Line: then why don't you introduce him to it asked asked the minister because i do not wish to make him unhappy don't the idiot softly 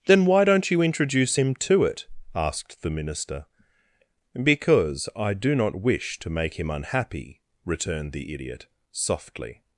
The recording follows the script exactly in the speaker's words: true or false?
false